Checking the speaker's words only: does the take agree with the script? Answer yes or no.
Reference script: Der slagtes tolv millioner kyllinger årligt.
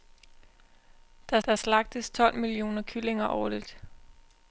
no